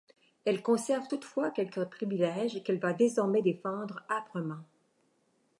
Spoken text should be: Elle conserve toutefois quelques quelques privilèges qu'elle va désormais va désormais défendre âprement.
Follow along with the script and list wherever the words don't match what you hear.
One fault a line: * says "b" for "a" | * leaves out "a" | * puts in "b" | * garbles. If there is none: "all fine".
* leaves out "quelques"
* leaves out "va désormais"